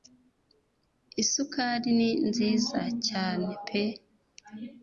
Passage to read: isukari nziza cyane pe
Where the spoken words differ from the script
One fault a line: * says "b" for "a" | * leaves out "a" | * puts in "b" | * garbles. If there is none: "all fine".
* puts in "ni"